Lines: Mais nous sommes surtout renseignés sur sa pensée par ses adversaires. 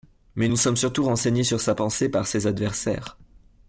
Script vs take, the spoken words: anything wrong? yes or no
no